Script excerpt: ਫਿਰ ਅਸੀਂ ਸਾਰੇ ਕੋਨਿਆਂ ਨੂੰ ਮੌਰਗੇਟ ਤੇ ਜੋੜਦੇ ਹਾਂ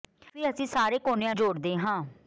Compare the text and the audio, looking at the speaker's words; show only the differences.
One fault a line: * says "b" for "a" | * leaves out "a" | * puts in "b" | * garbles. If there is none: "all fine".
* leaves out "ਨੂੰ ਮੌਰਗੇਟ ਤੇ"